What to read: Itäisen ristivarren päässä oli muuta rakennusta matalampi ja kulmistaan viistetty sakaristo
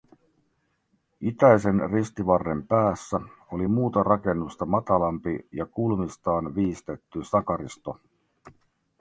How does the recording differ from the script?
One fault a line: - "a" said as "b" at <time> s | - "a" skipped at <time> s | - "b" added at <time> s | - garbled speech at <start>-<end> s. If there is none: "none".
none